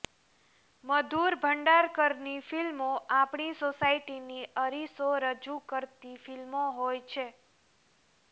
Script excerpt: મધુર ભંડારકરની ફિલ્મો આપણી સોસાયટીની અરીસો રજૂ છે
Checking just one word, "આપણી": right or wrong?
right